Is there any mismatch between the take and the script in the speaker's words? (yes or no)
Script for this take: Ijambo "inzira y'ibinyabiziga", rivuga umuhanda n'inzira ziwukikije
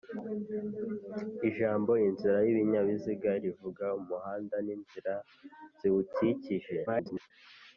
yes